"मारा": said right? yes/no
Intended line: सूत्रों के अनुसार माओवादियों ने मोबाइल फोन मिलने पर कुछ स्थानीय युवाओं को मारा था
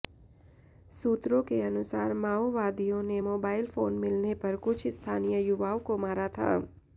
yes